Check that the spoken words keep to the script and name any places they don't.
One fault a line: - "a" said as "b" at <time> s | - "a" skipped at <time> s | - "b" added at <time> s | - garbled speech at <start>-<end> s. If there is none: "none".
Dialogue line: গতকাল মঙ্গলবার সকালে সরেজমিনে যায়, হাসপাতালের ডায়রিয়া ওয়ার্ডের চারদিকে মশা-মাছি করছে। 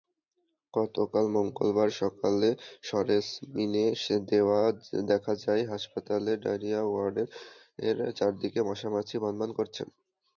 - "দেখা" added at 5.1 s
- "ভনভন" added at 9.2 s